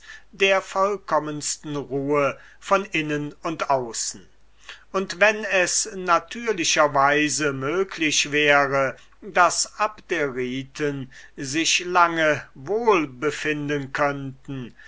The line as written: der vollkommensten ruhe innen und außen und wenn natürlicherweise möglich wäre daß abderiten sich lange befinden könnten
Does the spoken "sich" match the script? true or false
true